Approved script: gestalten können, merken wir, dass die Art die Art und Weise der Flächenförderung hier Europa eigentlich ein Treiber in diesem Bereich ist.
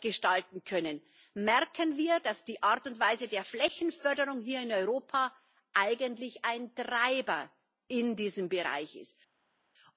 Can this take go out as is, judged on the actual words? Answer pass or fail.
fail